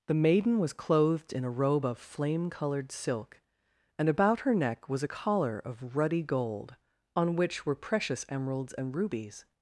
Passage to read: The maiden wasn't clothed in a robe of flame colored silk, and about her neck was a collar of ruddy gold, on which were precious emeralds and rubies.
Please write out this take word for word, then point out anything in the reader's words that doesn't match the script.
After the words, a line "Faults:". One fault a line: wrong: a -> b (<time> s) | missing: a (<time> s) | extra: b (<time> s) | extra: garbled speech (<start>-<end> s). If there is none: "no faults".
The maiden was clothed in a robe of flame colored silk, and about her neck was a collar of ruddy gold, on which were precious emeralds and rubies.
Faults:
wrong: wasn't -> was (0.6 s)